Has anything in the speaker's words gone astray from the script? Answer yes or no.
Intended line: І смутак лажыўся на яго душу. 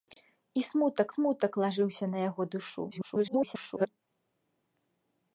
yes